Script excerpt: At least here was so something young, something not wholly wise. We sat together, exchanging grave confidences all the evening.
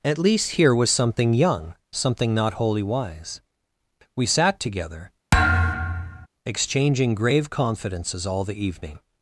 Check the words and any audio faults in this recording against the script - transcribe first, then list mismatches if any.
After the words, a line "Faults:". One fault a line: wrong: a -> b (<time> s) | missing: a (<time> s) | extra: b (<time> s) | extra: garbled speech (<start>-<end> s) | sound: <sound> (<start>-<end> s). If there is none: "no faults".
At least here was something young, something not wholly wise. We sat together, exchanging grave confidences all the evening.
Faults:
missing: so (0.9 s)
sound: thud (5.3-6.3 s)